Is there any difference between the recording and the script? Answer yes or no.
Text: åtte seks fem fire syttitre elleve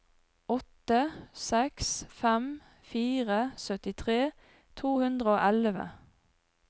yes